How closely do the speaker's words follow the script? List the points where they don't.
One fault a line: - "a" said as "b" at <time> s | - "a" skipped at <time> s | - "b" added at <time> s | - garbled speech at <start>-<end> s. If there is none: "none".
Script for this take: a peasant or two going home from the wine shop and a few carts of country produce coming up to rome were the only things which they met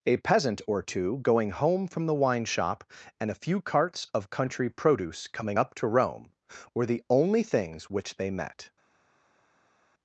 none